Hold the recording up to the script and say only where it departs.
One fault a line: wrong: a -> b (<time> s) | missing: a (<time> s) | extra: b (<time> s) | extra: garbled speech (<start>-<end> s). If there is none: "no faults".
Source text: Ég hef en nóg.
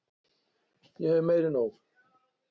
extra: meir (1.3 s)